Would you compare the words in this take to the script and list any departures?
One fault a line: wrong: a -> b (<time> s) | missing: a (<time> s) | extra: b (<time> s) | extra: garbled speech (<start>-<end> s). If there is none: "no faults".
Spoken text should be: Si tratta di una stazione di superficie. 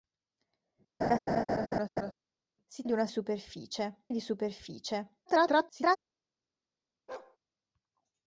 missing: tratta (2.8 s)
wrong: stazione -> superficie (3.1 s)
extra: garbled speech (5.3-6.0 s)